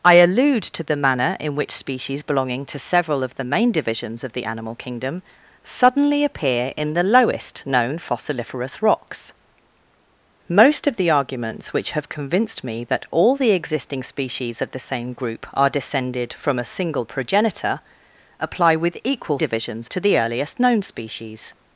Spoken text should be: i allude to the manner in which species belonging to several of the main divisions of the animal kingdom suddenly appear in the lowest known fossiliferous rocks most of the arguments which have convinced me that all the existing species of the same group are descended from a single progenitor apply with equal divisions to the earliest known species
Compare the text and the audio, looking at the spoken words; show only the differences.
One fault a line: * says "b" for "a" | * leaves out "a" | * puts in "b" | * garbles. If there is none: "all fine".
all fine